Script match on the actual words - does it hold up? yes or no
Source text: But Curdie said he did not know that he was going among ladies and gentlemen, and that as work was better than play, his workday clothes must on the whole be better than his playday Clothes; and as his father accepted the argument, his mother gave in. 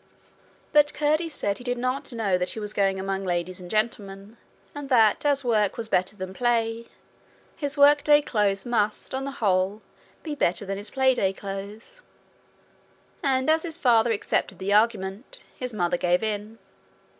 yes